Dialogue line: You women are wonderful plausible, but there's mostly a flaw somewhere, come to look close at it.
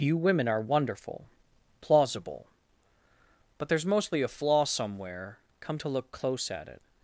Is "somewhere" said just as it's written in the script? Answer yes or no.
yes